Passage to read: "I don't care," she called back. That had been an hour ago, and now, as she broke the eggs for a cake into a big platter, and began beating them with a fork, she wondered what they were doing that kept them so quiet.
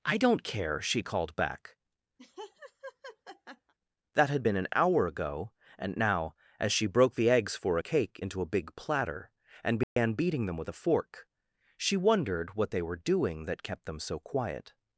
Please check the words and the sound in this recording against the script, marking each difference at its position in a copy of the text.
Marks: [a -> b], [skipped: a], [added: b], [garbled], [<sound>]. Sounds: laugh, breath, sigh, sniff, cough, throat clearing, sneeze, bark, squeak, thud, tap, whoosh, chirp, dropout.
"I don't care," she called back. [laugh] That had been an hour ago, and now, as she broke the eggs for a cake into a big platter, and began [dropout] beating them with a fork, she wondered what they were doing that kept them so quiet.